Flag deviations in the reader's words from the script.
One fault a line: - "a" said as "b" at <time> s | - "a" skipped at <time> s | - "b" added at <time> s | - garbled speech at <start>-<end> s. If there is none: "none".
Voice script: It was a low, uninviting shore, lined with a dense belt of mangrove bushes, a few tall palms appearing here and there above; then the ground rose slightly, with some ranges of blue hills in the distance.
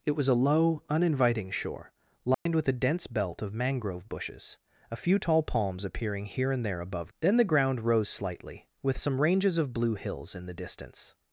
none